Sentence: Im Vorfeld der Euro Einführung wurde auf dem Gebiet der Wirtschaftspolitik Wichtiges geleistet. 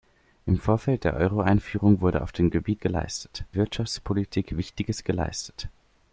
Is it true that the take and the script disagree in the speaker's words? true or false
true